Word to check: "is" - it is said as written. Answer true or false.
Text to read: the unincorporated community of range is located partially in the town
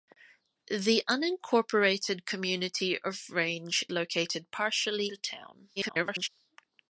false